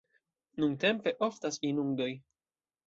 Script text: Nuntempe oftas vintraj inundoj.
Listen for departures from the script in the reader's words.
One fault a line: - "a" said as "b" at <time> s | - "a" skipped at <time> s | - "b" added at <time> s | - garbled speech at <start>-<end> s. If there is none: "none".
- "vintraj" skipped at 1.6 s